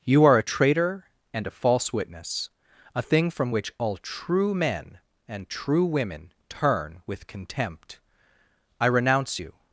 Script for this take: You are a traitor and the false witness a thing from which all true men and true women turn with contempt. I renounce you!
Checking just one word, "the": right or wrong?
wrong